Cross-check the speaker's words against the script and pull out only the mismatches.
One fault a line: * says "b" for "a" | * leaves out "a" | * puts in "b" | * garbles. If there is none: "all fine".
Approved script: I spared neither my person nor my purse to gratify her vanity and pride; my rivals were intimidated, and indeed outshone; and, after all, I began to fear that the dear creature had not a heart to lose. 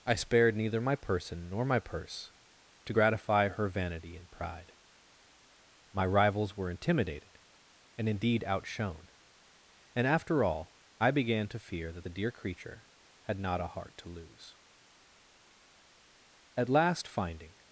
* puts in "At last finding"